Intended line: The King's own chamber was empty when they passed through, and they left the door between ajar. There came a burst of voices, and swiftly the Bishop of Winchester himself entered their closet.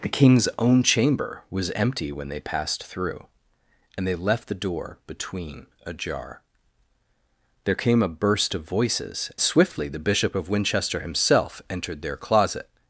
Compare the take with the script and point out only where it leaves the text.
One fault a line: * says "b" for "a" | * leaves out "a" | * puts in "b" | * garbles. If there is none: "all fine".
* leaves out "and"